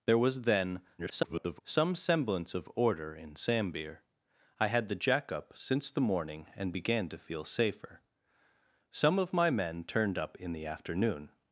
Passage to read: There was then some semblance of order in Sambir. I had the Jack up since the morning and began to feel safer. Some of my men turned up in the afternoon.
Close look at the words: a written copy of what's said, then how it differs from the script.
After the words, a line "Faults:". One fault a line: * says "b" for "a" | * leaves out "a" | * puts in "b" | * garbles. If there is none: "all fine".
There was then [garbled] some semblance of order in Sambir. I had the Jack up since the morning and began to feel safer. Some of my men turned up in the afternoon.
Faults:
* garbles